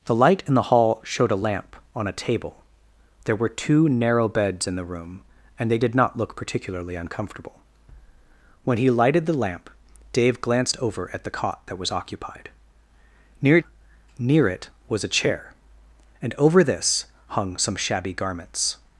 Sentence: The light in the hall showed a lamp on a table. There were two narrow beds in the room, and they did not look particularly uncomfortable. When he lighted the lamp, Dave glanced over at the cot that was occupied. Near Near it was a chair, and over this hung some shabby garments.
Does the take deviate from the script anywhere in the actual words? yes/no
no